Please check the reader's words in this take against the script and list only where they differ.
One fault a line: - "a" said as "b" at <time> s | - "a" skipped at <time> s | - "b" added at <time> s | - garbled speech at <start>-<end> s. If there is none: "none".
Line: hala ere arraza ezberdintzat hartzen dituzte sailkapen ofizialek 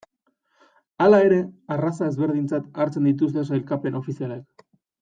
none